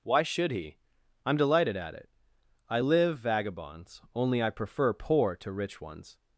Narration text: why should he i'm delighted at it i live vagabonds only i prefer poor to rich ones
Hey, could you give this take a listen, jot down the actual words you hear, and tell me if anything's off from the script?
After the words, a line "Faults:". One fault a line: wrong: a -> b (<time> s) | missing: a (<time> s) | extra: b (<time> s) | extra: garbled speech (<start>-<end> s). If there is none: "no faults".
why should he i'm delighted at it i live vagabonds only i prefer poor to rich ones
Faults:
no faults